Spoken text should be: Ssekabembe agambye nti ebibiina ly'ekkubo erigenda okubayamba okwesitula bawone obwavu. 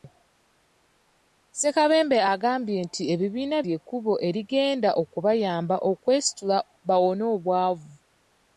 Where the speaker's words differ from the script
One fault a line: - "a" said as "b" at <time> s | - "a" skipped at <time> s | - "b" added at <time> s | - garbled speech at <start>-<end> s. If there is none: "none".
none